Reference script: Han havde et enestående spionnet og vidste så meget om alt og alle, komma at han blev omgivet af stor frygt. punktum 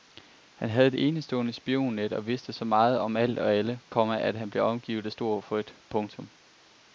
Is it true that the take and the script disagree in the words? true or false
false